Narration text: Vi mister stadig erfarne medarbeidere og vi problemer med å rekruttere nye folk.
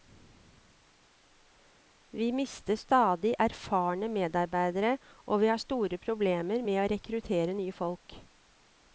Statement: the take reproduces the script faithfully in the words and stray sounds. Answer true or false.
false